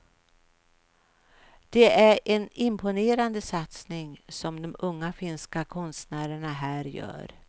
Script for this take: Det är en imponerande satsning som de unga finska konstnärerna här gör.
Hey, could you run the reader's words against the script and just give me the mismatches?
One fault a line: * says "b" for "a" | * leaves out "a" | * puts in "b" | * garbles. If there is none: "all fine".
all fine